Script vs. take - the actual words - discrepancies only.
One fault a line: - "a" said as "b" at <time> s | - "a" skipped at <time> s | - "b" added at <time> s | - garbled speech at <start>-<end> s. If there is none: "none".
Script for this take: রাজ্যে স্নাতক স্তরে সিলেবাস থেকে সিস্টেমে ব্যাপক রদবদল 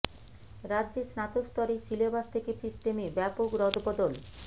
none